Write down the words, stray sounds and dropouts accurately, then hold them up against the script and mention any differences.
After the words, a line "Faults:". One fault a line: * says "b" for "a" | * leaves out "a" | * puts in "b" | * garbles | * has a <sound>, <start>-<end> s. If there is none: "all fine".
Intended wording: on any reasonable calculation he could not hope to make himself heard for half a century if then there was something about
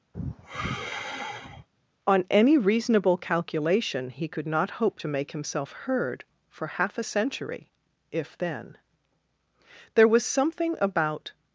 on any reasonable calculation he could not hope to make himself heard for half a century if then there was something about
Faults:
* has a sigh, 0.1-1.7 s